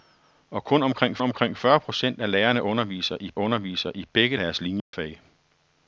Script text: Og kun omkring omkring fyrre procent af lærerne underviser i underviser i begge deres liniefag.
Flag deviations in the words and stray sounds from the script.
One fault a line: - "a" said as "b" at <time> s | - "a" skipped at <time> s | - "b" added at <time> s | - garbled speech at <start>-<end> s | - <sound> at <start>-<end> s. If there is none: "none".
- dropout at 4.8-4.9 s